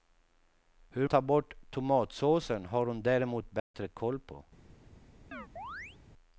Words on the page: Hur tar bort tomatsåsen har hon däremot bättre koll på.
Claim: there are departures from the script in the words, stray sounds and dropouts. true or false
true